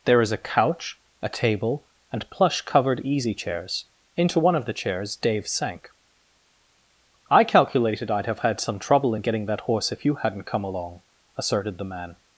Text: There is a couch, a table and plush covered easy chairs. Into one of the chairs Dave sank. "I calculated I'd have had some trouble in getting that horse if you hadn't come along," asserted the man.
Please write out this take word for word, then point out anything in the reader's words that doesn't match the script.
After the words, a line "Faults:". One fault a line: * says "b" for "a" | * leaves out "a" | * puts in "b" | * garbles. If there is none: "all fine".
There is a couch, a table and plush covered easy chairs. Into one of the chairs Dave sank. "I calculated I'd have had some trouble in getting that horse if you hadn't come along," asserted the man.
Faults:
all fine